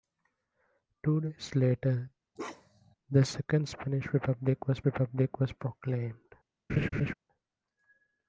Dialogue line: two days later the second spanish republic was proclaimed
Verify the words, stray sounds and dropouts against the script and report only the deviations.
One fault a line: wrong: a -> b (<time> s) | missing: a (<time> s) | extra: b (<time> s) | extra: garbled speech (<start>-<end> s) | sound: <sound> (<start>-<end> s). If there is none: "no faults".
sound: bark (2.4-3.0 s)
extra: republic was (4.8 s)
sound: laugh (6.7-7.1 s)